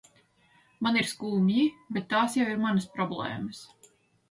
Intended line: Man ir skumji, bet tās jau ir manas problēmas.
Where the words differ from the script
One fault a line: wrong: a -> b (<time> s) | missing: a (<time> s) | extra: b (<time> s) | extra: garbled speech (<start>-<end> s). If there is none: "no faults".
no faults